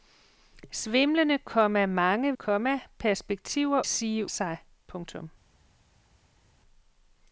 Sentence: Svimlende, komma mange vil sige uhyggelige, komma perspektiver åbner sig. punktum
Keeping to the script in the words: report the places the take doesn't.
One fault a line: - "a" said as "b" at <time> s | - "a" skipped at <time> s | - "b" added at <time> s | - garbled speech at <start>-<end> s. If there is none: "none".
- "vil sige uhyggelige" skipped at 2.4 s
- "åbner" said as "sige" at 3.8 s